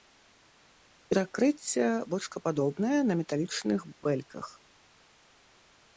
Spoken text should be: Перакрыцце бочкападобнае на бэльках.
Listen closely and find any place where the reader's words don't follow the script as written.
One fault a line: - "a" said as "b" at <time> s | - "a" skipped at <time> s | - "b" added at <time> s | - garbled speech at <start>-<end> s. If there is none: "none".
- "металічных" added at 3.2 s